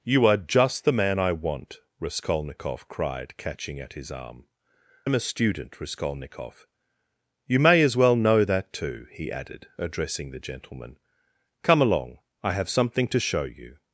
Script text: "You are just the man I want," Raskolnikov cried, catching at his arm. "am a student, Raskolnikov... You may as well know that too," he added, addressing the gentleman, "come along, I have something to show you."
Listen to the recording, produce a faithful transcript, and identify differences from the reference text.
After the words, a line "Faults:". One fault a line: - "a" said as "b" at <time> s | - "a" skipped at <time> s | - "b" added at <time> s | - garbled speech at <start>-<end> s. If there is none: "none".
"You are just the man I want," Raskolnikov cried, catching at his arm. "am a student, Raskolnikov... You may as well know that too," he added, addressing the gentleman, "come along, I have something to show you."
Faults:
none